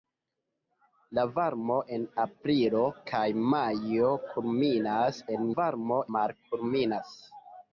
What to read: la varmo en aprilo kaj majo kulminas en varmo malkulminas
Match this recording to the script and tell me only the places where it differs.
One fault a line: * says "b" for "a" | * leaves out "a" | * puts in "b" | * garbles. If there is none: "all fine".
all fine